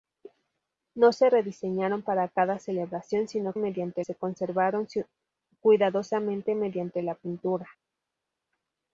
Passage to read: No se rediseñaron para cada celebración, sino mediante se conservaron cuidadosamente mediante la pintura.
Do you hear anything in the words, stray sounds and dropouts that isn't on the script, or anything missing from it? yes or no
no